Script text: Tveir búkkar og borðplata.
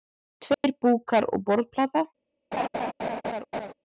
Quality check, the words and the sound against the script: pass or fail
fail